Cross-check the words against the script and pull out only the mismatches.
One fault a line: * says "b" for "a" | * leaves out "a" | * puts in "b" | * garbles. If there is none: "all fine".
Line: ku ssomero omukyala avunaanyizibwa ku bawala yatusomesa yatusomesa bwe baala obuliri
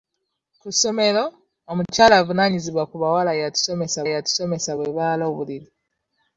all fine